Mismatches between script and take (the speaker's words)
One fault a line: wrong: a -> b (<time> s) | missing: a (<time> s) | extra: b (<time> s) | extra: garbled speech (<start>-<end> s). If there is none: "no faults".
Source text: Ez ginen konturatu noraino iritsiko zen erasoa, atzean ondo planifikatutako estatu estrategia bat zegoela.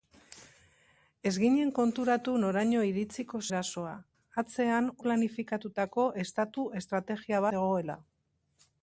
missing: zen (3.4 s)
missing: ondo (4.9 s)
missing: bat (7.4 s)